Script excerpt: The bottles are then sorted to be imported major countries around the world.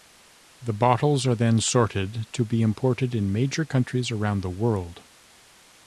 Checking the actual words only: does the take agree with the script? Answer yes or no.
no